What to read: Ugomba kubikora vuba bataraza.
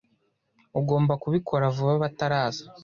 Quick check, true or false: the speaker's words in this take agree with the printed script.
true